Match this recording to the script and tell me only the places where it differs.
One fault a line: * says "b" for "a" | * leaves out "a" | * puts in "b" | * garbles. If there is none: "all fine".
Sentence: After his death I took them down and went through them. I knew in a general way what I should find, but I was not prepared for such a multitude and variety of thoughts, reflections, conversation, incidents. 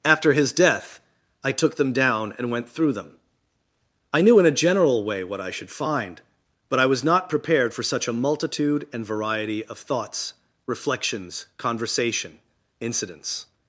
all fine